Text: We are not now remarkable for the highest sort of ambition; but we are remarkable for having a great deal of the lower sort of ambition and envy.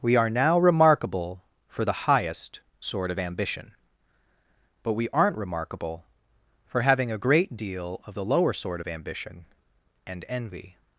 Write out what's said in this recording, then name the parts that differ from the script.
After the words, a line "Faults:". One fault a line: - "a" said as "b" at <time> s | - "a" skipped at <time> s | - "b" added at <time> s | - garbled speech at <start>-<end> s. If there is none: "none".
We are now remarkable for the highest sort of ambition; but we aren't remarkable for having a great deal of the lower sort of ambition and envy.
Faults:
- "not" skipped at 0.3 s
- "are" said as "aren't" at 5.1 s